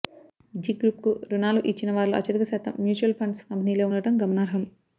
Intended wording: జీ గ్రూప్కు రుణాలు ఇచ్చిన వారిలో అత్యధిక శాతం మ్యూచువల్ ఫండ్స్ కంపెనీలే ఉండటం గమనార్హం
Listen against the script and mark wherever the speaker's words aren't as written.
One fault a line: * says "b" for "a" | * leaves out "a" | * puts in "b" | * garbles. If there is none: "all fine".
all fine